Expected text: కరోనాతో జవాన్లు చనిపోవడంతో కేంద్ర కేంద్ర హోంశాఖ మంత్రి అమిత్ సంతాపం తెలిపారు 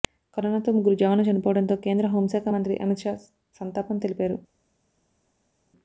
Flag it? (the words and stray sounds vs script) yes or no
yes